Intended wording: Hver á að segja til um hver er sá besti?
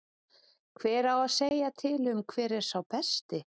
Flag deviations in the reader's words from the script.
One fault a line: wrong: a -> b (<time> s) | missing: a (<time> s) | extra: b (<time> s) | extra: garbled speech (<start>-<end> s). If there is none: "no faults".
no faults